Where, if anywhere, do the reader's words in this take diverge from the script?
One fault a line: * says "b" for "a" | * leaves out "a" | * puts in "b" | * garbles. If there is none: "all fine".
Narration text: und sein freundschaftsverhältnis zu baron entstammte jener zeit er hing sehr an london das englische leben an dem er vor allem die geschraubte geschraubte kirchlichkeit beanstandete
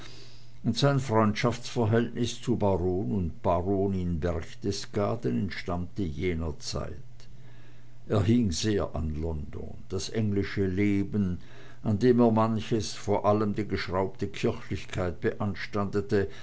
* puts in "und baronin berchtesgaden"
* puts in "manches"
* leaves out "geschraubte"